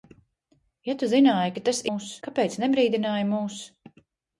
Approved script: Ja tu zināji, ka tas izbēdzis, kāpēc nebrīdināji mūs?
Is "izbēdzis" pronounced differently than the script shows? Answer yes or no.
yes